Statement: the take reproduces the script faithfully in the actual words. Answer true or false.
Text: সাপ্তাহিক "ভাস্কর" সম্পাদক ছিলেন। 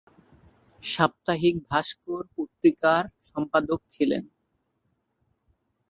false